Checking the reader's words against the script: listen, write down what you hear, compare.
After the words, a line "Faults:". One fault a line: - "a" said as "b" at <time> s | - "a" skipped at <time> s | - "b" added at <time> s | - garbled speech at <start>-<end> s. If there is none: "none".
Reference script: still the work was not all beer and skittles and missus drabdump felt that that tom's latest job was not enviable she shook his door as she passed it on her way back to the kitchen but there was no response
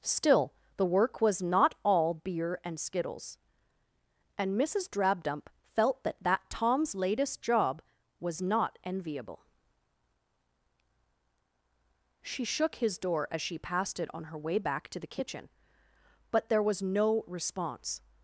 still the work was not all beer and skittles and missus drabdump felt that that tom's latest job was not enviable she shook his door as she passed it on her way back to the kitchen but there was no response
Faults:
none